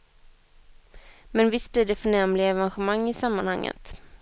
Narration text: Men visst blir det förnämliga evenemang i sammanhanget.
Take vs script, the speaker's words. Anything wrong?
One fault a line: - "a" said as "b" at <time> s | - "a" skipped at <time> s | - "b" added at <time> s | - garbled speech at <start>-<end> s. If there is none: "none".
none